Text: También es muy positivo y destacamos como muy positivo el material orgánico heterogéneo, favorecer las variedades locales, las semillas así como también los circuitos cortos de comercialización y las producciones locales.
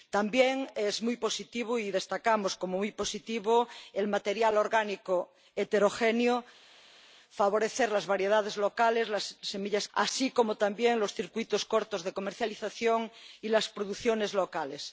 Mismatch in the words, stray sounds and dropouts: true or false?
false